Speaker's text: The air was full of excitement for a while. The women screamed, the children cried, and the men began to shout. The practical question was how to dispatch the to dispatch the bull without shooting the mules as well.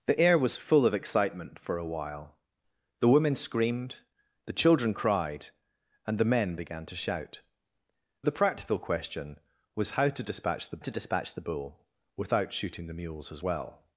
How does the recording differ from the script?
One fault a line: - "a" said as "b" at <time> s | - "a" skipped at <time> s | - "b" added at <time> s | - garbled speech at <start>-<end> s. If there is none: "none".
none